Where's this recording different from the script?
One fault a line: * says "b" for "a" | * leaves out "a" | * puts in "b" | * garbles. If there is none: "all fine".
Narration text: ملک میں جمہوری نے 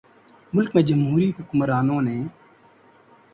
* puts in "حکمرانوں"